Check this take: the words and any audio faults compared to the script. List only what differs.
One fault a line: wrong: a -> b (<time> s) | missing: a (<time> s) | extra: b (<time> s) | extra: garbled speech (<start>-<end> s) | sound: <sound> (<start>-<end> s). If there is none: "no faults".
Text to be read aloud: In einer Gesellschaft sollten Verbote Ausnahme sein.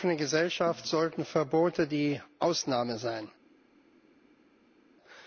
extra: offenen (0.1 s)
extra: die (1.9 s)